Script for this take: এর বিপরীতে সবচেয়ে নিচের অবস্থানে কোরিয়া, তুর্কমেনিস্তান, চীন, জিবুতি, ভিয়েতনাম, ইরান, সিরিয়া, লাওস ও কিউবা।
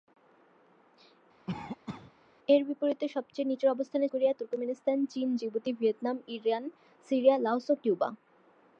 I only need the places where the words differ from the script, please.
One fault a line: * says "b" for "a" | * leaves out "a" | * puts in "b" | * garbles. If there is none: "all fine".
all fine